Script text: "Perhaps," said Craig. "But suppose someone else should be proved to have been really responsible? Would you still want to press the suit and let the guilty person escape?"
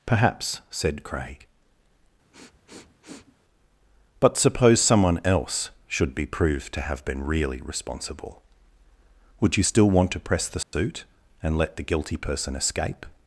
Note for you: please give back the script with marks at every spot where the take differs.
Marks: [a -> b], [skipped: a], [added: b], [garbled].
"Perhaps," said Craig. "But suppose someone else should be proved to have been really responsible? Would you still want to press the suit and let the guilty person escape?"